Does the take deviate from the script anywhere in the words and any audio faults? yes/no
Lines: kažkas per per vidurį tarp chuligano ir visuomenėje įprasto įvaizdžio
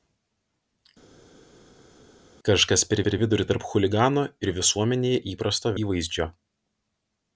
no